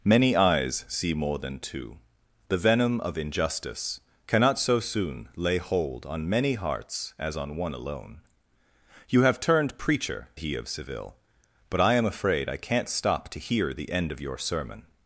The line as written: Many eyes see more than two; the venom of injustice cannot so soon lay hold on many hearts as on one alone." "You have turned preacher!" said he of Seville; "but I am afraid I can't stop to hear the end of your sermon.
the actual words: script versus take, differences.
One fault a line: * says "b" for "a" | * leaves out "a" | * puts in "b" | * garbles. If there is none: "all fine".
* leaves out "said"